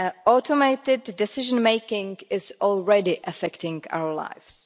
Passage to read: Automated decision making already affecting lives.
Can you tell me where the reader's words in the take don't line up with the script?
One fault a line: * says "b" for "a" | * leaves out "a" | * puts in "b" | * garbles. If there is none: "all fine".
* puts in "is"
* puts in "our"